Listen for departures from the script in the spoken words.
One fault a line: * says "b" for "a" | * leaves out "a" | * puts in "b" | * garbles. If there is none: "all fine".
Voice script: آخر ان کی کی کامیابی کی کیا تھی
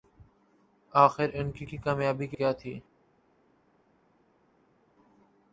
all fine